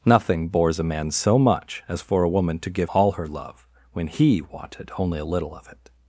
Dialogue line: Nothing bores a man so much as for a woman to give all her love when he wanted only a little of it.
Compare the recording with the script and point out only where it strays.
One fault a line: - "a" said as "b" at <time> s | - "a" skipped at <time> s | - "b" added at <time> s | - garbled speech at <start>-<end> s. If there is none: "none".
none